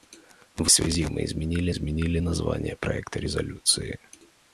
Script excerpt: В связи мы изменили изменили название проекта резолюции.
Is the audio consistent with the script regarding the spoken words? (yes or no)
yes